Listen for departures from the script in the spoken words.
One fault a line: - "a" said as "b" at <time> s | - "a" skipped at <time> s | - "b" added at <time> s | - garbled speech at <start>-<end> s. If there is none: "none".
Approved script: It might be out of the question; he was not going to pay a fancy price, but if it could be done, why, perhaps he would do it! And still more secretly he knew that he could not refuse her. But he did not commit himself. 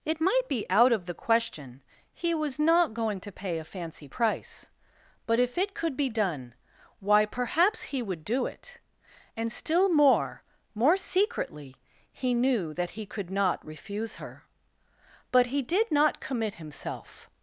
- "more" added at 10.7 s